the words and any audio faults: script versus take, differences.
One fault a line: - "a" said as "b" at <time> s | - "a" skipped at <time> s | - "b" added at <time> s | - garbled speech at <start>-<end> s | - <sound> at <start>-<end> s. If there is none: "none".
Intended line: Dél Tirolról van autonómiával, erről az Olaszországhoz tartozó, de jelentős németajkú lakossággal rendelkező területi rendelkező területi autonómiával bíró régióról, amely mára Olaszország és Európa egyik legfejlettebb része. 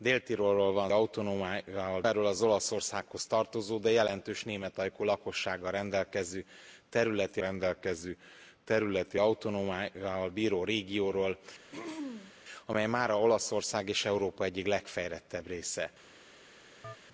- throat clearing at 11.7-12.3 s
- chirp at 16.8-17.0 s